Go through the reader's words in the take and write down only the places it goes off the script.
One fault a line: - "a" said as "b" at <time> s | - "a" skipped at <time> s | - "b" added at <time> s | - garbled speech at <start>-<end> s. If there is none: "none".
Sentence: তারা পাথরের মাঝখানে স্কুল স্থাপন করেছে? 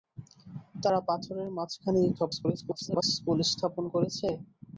- garbled speech at 2.2-3.0 s